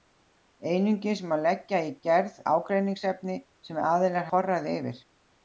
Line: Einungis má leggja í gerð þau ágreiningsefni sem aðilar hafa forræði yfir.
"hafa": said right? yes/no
no